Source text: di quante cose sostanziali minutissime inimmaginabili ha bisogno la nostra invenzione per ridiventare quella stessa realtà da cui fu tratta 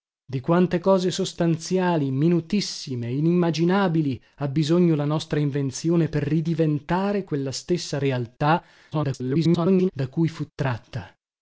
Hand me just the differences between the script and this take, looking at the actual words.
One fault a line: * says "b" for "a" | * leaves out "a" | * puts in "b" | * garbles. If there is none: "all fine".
* garbles